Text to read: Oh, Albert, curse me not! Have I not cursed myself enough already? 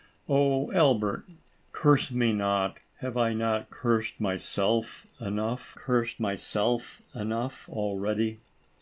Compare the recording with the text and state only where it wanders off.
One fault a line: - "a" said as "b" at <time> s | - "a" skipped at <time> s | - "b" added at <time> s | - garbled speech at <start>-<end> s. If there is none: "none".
- "cursed myself enough" added at 5.7 s